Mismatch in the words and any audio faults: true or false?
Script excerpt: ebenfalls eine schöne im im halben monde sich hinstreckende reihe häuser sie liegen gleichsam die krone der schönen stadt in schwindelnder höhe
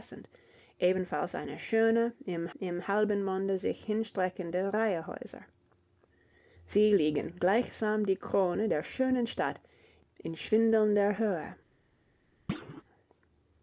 true